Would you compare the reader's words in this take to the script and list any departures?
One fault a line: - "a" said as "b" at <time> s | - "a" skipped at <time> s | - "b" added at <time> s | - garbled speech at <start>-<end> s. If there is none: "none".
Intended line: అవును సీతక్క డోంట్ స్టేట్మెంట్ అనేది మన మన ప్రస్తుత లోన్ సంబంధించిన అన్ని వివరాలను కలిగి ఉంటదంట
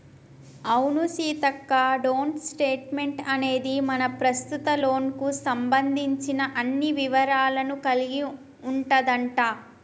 - "మన" skipped at 4.0 s
- "కు" added at 5.2 s